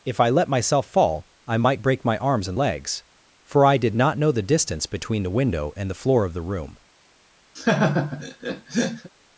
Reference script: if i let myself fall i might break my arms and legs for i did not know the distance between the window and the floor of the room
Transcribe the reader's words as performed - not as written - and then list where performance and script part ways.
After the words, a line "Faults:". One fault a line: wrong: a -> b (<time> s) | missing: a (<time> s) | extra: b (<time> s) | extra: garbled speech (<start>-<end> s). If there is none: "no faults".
if i let myself fall i might break my arms and legs for i did not know the distance between the window and the floor of the room
Faults:
no faults